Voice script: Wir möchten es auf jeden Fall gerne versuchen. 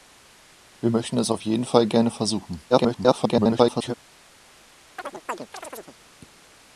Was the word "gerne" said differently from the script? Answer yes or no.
no